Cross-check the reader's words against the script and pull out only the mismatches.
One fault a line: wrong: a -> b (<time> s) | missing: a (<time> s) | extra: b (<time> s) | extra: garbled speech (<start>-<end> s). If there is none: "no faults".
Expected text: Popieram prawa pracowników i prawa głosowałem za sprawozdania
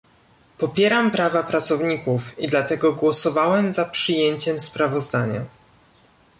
wrong: prawa -> dlatego (2.5 s)
extra: przyjęciem (3.8 s)